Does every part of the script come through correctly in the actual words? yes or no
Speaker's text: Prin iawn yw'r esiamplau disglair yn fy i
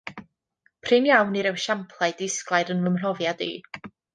no